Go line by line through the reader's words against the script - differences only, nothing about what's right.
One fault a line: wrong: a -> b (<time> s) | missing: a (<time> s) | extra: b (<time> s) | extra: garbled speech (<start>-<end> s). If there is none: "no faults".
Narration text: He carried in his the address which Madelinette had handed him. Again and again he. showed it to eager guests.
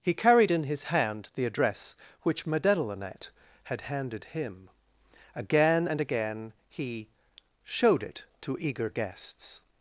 extra: hand (0.8 s)